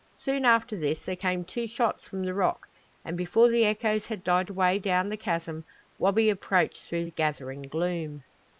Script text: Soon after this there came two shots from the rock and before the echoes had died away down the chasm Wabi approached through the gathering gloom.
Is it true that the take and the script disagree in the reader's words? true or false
false